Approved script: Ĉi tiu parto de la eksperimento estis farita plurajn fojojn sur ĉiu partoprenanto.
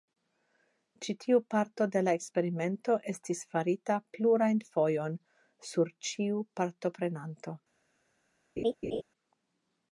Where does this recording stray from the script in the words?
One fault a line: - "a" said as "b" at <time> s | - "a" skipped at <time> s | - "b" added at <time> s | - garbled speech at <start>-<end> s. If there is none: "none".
none